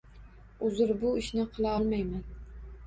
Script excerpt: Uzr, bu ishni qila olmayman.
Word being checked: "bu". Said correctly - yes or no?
yes